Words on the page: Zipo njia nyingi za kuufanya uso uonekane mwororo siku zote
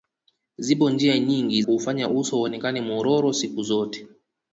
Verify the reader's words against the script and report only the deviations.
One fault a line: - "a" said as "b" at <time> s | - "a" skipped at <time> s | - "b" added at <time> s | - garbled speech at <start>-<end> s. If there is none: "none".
- "za" skipped at 1.6 s